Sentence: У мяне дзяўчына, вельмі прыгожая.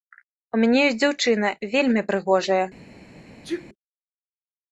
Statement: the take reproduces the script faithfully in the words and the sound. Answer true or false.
false